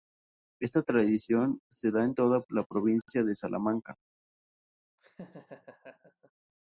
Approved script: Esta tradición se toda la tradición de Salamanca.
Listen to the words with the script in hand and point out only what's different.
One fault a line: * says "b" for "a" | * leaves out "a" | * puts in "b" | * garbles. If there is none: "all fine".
* puts in "da en"
* says "provincia" for "tradición"